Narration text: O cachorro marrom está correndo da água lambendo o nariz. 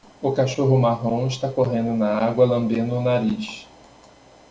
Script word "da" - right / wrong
wrong